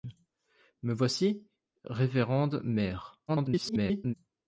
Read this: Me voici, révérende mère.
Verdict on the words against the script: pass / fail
fail